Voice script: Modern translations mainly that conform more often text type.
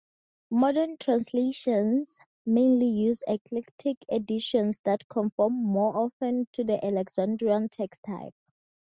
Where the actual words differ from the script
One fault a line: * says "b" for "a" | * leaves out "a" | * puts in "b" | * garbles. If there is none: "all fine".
* puts in "use Eclectic editions"
* puts in "to the Alexandrian"